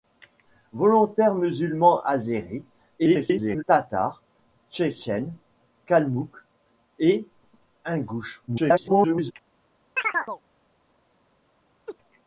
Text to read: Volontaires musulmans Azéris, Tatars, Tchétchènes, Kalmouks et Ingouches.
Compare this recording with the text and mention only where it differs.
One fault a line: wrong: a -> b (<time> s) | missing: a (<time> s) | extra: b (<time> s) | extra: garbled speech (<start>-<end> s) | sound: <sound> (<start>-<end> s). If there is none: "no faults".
extra: garbled speech (3.0-3.6 s)
extra: garbled speech (8.5-9.3 s)
sound: chirp (10.0-10.4 s)
sound: laugh (11.9-12.0 s)